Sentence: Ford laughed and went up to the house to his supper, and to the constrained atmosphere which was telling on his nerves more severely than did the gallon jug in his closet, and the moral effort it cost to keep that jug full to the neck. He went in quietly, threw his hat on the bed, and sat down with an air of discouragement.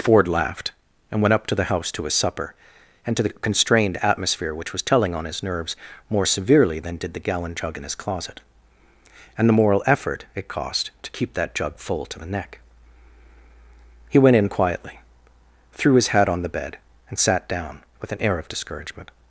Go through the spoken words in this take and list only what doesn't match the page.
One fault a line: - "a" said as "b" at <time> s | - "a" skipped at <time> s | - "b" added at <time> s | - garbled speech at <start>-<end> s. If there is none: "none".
none